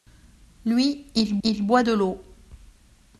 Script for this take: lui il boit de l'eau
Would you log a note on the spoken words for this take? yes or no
yes